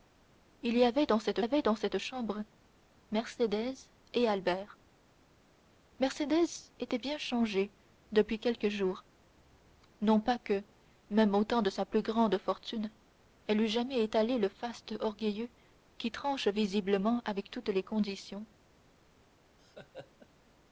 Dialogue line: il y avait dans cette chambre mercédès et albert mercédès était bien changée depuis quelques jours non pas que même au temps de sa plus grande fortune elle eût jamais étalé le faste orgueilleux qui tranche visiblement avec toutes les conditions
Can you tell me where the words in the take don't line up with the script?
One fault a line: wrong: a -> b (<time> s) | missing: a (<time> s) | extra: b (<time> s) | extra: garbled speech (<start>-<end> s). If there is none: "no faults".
extra: avait dans cette (1.4 s)